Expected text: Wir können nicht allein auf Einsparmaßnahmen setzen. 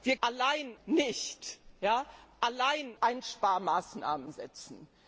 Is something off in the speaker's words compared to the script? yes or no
yes